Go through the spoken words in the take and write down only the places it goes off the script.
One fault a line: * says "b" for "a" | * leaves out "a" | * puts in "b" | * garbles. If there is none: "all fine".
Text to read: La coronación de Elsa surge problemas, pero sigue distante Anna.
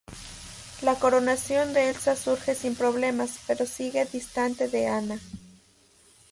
* puts in "sin"
* puts in "de"